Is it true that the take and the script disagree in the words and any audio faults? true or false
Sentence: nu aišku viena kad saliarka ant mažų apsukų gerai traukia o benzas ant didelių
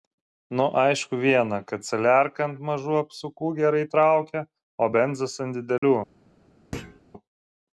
true